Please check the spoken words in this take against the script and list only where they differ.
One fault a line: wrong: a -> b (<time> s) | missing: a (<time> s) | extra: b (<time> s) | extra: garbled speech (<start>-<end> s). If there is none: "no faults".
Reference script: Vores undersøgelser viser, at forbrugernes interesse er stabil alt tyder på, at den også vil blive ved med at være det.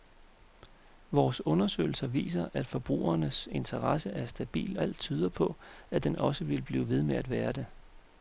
no faults